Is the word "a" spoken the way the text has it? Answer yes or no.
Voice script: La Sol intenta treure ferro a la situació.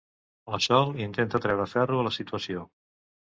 yes